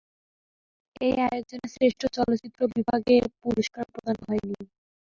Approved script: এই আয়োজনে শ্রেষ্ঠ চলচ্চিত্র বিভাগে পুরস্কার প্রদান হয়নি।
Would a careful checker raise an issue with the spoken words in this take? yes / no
no